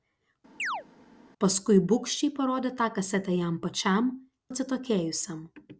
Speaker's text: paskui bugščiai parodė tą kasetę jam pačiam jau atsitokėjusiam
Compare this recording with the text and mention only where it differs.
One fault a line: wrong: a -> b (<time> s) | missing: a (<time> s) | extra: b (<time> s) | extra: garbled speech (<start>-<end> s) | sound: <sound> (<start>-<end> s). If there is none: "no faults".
sound: chirp (0.6-0.8 s)
missing: jau (4.1 s)